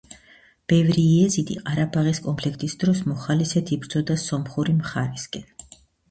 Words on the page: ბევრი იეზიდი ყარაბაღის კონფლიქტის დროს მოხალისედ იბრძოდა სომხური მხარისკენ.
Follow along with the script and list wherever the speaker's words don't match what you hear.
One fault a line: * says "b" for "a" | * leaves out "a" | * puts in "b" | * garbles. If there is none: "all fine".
all fine